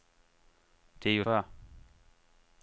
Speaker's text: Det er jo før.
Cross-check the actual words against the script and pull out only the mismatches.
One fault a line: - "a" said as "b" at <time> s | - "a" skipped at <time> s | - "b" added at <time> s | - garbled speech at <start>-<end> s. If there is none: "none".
none